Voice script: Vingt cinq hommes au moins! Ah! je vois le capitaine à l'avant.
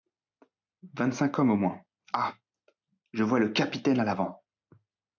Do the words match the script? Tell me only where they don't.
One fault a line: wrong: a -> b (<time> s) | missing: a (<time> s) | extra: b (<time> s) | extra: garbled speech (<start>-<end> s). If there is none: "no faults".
no faults